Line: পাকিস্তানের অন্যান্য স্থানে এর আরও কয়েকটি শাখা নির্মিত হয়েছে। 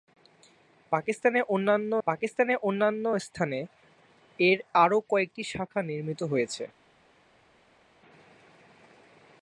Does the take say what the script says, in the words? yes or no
no